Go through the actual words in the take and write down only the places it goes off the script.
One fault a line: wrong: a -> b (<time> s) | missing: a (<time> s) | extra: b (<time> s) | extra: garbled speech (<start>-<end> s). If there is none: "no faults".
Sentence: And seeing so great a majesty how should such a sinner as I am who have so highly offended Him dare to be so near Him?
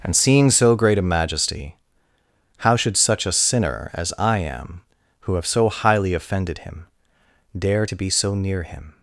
no faults